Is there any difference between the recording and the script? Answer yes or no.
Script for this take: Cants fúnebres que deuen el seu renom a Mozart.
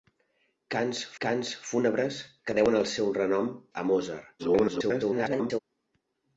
yes